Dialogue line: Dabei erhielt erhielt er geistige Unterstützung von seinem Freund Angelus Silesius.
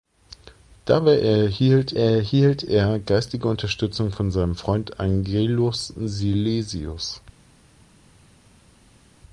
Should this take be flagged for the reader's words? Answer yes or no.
no